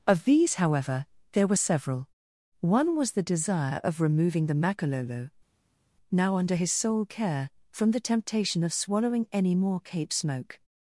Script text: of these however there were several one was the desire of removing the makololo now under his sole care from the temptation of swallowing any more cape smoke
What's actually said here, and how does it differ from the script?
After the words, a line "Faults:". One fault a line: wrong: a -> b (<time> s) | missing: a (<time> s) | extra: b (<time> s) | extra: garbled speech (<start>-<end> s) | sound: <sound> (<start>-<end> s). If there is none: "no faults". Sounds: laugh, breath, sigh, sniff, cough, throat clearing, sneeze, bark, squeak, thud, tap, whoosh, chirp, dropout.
of these however there were several one was the desire of removing the makololo now under his sole care from the temptation of swallowing any more cape smoke
Faults:
no faults